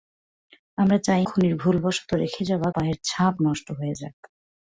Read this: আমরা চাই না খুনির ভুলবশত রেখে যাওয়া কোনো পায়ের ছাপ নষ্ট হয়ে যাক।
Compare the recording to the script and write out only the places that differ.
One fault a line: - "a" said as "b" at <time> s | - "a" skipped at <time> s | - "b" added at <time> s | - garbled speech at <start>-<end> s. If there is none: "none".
- "না" skipped at 1.2 s
- "কোনো" skipped at 2.7 s